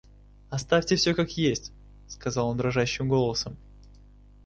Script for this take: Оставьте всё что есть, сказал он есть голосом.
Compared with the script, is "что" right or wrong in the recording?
wrong